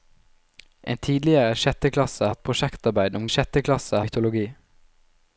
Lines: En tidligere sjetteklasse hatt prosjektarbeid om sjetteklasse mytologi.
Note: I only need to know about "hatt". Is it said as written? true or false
true